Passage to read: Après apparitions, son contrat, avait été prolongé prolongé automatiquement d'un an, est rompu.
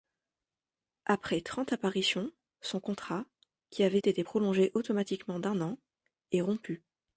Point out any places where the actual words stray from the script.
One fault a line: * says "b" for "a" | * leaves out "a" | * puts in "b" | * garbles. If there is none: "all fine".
* puts in "trente"
* puts in "qui"
* leaves out "prolongé"